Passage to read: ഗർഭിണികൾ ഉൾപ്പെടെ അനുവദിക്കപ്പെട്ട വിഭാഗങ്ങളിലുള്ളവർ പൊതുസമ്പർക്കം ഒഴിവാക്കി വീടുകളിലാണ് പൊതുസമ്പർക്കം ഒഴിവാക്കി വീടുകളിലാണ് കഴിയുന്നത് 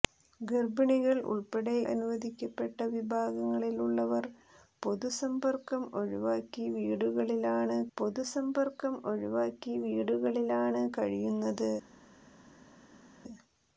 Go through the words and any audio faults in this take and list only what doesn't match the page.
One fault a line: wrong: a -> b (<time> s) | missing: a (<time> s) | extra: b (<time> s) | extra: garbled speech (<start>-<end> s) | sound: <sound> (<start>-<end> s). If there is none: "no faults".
no faults